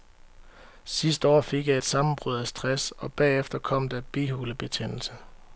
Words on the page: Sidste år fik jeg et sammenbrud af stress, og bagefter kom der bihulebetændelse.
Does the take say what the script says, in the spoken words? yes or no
yes